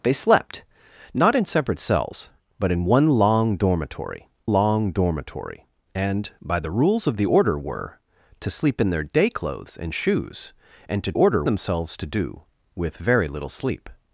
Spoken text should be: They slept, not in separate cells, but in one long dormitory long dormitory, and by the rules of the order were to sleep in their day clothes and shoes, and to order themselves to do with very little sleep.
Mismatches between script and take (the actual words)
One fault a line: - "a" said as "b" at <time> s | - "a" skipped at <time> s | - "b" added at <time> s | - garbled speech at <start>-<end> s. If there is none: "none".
none